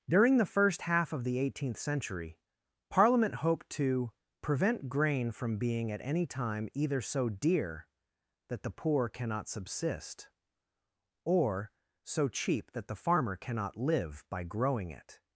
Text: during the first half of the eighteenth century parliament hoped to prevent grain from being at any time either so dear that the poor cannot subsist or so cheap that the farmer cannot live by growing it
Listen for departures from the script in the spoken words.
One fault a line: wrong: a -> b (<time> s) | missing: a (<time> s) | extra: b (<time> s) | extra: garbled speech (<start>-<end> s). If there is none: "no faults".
no faults